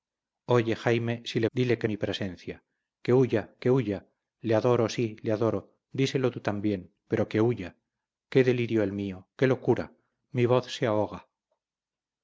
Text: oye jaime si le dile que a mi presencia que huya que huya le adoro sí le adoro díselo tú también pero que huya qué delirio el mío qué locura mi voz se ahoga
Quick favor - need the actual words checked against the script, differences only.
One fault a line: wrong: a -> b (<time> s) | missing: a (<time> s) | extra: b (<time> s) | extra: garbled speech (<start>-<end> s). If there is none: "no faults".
no faults